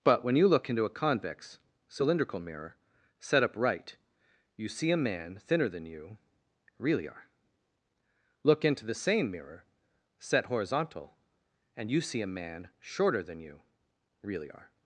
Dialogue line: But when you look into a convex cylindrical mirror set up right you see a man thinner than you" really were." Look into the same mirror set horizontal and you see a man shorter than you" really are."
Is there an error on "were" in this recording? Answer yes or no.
yes